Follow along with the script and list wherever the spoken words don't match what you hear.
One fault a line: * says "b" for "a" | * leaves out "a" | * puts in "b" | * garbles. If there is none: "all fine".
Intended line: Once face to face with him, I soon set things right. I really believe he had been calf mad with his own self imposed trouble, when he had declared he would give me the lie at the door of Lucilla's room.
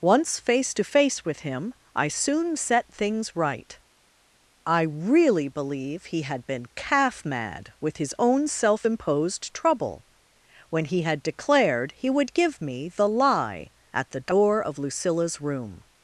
all fine